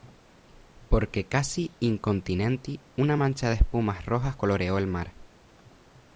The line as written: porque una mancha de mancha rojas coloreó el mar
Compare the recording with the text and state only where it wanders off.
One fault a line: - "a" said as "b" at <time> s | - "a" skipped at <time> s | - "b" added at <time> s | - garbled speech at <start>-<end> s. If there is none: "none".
- "casi incontinenti" added at 1.3 s
- "mancha" said as "espumas" at 3.6 s